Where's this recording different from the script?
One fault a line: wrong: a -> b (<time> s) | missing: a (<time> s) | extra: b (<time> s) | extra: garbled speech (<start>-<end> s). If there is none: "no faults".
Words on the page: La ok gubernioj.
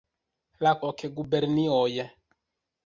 no faults